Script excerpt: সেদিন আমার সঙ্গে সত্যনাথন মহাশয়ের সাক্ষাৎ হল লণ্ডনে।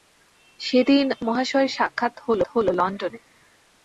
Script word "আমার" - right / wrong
wrong